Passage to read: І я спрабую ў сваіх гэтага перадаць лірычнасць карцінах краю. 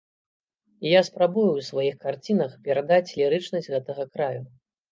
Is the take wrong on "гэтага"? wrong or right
wrong